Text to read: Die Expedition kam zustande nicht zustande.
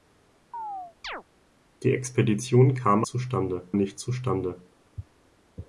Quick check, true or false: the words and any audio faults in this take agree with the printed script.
false